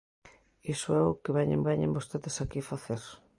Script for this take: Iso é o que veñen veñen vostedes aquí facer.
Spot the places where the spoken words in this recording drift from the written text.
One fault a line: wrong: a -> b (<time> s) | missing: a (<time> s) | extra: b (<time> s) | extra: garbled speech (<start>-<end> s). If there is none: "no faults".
no faults